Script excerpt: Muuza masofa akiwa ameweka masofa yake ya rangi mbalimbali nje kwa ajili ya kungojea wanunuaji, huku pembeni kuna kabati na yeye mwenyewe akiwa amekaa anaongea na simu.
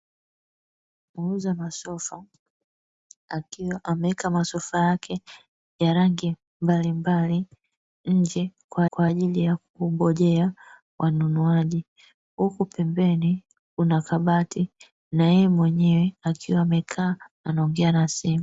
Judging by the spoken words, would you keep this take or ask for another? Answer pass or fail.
fail